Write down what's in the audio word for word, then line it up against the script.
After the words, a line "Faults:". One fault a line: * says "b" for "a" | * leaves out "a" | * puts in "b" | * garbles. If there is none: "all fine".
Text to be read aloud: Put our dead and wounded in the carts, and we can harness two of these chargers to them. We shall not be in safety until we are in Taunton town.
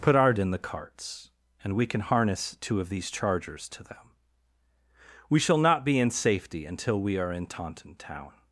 Put our in the carts, and we can harness two of these chargers to them. We shall not be in safety until we are in Taunton town.
Faults:
* leaves out "dead and wounded"